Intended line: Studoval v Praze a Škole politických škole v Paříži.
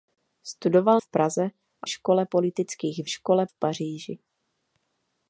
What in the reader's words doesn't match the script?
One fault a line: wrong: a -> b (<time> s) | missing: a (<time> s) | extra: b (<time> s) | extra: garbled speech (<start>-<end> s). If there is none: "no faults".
no faults